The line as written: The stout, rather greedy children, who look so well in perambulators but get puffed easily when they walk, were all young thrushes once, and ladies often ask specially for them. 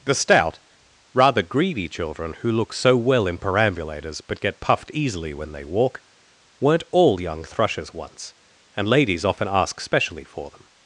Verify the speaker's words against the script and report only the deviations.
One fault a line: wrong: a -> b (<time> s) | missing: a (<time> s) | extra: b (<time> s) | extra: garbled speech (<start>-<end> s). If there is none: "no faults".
wrong: were -> weren't (6.6 s)